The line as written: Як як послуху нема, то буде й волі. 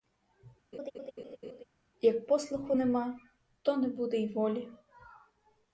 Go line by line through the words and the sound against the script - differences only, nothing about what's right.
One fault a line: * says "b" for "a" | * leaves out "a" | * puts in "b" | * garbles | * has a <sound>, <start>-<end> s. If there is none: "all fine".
* has a laugh, 0.7-1.6 s
* leaves out "як"
* puts in "не"